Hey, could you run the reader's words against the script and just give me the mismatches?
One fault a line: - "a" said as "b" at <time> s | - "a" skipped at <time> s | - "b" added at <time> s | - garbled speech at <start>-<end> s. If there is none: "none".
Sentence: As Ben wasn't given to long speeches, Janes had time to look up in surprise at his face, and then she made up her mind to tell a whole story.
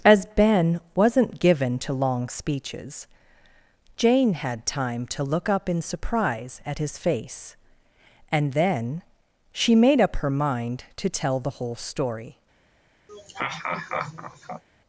- "Janes" said as "Jane" at 4.0 s
- "a" said as "the" at 11.4 s